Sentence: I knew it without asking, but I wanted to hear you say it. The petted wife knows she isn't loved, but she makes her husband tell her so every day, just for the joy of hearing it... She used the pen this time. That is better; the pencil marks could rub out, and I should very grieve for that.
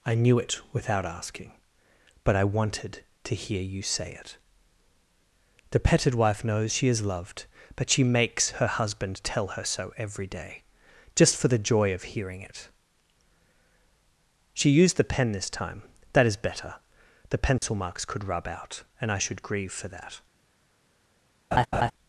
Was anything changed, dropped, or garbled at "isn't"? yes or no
yes